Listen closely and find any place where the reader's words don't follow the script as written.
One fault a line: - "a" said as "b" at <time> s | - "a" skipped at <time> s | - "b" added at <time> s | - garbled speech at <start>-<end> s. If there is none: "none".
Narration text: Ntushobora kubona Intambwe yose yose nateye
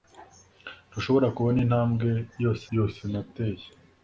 none